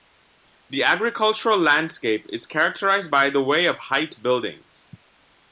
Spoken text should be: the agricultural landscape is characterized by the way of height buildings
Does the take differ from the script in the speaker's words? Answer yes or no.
no